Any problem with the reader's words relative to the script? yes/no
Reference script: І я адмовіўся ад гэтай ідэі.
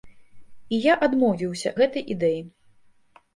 yes